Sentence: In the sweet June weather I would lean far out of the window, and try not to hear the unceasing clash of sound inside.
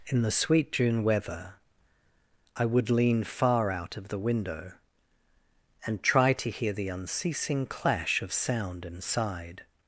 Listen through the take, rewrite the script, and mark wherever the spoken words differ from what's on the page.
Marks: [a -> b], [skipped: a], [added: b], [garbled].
In the sweet June weather I would lean far out of the window, and try [skipped: not] to hear the unceasing clash of sound inside.